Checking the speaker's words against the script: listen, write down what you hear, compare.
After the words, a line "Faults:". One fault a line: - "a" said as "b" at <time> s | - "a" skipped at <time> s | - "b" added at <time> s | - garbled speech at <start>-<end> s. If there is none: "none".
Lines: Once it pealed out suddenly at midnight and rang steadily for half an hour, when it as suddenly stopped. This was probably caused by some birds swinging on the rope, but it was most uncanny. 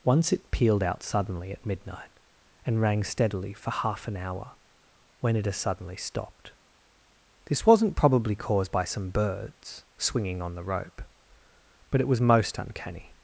Once it pealed out suddenly at midnight and rang steadily for half an hour, when it as suddenly stopped. This wasn't probably caused by some birds swinging on the rope, but it was most uncanny.
Faults:
- "was" said as "wasn't" at 7.7 s